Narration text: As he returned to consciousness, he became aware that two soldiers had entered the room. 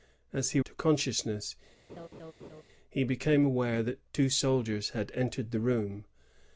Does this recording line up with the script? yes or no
no